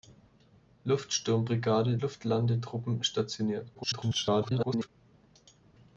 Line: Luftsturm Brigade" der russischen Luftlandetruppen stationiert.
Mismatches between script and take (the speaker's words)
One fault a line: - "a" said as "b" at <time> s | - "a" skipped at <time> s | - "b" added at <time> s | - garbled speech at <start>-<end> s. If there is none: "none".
- "der russischen" skipped at 2.0 s
- garbled speech at 3.7-4.9 s